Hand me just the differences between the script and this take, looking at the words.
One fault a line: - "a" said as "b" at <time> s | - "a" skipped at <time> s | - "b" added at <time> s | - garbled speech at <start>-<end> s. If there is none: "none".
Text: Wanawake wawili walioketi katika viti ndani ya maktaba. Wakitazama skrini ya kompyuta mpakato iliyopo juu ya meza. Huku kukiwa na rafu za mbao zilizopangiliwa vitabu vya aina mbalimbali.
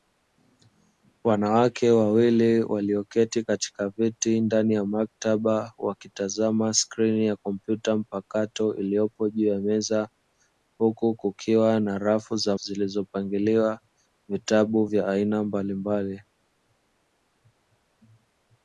- "mbao" skipped at 12.6 s